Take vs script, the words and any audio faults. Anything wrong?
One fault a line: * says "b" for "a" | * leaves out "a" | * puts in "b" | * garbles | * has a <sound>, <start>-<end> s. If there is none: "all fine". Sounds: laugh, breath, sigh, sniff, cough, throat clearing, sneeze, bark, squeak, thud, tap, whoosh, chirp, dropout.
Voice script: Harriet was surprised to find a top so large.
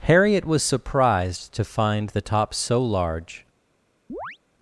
* says "the" for "a"
* has a chirp, 4.1-4.4 s